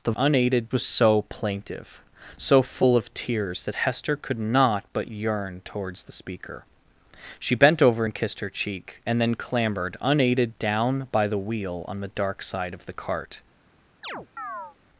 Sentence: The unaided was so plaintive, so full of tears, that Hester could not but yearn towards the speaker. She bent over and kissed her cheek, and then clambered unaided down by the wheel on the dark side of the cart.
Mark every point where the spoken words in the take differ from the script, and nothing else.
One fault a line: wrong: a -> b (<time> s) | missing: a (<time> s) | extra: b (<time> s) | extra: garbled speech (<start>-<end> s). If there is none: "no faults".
no faults